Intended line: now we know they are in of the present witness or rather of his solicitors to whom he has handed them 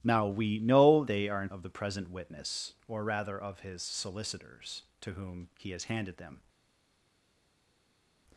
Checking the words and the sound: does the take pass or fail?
pass